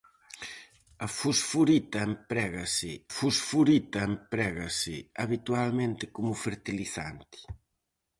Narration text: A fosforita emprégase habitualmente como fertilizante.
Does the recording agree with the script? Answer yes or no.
no